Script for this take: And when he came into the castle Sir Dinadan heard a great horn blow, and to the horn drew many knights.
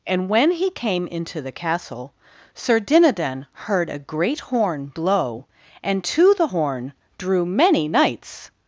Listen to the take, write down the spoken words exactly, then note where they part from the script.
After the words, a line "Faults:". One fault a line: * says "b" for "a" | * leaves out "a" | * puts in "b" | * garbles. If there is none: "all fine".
And when he came into the castle Sir Dinadan heard a great horn blow, and to the horn drew many knights.
Faults:
all fine